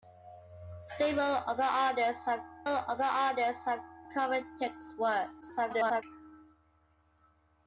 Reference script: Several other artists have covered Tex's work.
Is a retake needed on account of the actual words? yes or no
yes